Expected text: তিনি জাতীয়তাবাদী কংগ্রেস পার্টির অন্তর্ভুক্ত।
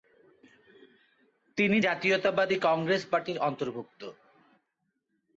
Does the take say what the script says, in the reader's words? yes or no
yes